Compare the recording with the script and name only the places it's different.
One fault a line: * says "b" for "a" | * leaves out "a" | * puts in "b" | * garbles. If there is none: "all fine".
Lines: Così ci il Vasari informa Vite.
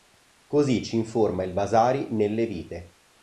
* puts in "informa"
* says "nelle" for "informa"